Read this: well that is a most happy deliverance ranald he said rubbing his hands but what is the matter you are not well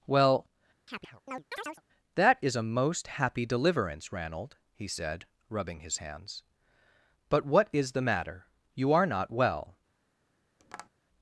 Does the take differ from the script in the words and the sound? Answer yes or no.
yes